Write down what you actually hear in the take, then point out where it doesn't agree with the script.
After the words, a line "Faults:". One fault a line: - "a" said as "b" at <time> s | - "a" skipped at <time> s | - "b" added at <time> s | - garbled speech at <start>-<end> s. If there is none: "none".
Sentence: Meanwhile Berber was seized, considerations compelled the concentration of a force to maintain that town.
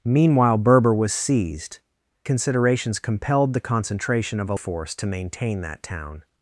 Meanwhile Berber was seized, considerations compelled the concentration of a force to maintain that town.
Faults:
none